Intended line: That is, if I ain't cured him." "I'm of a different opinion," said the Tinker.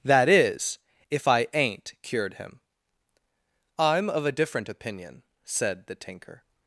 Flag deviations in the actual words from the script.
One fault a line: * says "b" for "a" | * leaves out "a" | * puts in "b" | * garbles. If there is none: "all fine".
all fine